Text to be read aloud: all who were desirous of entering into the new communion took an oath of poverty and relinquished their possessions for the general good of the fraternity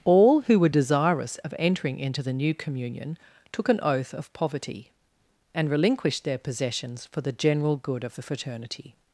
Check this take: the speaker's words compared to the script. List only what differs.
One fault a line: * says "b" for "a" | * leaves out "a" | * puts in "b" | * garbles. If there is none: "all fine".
all fine